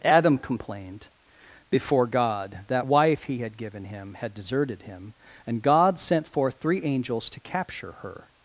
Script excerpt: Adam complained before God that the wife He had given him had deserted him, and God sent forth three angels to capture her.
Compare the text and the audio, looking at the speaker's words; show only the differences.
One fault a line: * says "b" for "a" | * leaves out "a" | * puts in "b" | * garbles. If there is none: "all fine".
* leaves out "the"